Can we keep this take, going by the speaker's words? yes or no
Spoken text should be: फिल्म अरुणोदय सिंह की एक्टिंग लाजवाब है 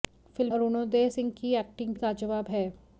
yes